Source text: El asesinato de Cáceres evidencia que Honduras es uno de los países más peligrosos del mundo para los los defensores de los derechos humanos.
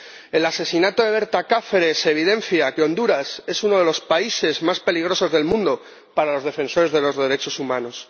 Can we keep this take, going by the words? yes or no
no